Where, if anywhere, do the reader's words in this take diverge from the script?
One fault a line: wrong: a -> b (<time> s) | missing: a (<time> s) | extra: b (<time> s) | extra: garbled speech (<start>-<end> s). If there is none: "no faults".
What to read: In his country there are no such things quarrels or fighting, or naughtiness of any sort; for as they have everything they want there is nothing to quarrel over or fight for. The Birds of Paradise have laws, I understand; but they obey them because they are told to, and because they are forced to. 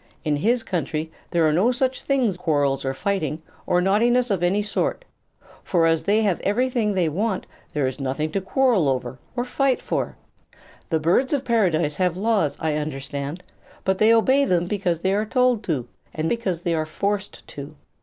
no faults